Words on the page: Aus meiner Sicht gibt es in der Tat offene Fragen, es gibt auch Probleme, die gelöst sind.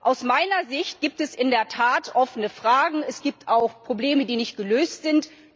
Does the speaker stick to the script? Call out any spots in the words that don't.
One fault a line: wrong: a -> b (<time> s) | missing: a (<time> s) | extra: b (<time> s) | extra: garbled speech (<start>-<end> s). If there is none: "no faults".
extra: nicht (4.3 s)